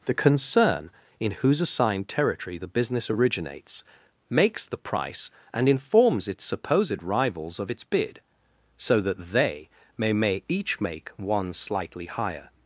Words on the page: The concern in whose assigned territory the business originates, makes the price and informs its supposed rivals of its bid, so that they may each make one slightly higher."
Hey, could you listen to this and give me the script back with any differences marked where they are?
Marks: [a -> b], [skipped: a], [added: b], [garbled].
The concern in whose assigned territory the business originates, makes the price and informs its supposed rivals of its bid, so that they may [added: may] each make one slightly higher."